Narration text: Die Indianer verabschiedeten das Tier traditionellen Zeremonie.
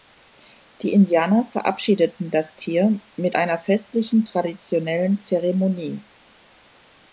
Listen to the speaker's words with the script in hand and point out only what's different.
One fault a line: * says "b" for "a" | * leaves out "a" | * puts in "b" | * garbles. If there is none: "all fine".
* puts in "mit einer festlichen"